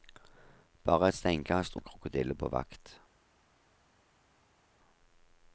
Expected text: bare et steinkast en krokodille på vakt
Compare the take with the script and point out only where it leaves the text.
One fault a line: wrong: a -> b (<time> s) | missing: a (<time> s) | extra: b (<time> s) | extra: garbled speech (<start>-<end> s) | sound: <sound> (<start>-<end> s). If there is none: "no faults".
no faults